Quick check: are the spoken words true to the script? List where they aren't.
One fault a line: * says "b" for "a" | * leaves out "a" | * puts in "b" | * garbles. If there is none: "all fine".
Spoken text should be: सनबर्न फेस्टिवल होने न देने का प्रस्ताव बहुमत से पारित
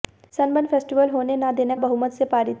* leaves out "का प्रस्ताव"